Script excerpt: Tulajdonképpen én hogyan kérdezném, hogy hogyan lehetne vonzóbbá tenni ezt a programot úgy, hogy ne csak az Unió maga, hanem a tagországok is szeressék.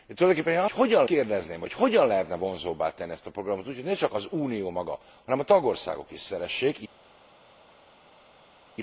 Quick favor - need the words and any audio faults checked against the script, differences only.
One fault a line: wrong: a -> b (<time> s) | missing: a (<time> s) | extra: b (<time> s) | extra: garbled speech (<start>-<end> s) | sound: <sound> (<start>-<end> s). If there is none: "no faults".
no faults